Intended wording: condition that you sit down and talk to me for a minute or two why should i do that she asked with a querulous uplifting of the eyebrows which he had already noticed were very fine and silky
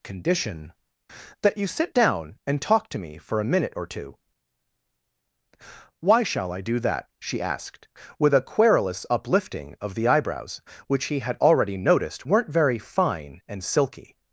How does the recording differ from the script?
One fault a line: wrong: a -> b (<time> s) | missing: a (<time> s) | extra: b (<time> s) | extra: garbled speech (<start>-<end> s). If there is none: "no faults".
wrong: should -> shall (6.2 s)
wrong: were -> weren't (12.2 s)